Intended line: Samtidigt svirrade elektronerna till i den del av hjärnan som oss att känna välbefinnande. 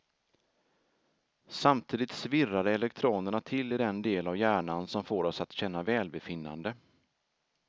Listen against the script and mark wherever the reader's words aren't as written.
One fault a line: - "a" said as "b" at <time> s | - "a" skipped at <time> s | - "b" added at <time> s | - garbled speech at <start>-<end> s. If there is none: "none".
- "får" added at 5.0 s